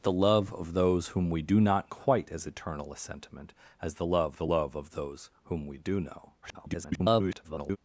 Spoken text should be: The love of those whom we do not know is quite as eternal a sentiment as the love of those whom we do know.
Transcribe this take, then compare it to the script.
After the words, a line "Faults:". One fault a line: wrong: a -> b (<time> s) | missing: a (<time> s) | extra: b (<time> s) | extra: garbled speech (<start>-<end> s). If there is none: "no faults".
The love of those whom we do not quite as eternal a sentiment as the love the love of those whom we do know. [garbled]
Faults:
missing: know is (1.9 s)
extra: the love (4.3 s)
extra: garbled speech (6.4-7.8 s)